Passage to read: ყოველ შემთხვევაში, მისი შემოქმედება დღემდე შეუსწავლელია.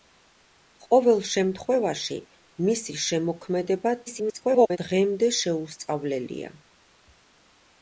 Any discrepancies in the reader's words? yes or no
yes